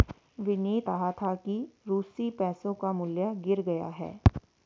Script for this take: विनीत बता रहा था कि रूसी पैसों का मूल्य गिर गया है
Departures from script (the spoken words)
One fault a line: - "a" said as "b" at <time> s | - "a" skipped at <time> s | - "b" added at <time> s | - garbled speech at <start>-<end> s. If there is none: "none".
- "बता" skipped at 0.9 s